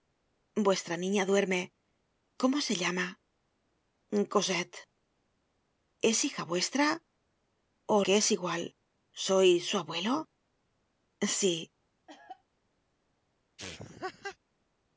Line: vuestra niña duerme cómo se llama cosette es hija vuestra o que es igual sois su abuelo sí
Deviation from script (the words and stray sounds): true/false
true